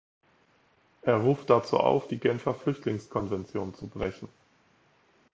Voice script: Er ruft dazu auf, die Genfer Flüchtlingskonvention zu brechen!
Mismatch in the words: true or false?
false